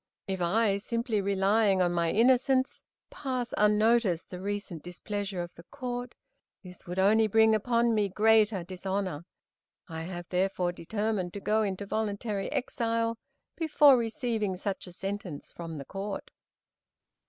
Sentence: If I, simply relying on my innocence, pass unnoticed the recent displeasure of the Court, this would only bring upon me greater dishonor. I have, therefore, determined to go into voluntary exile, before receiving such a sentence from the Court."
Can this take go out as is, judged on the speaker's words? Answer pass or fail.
pass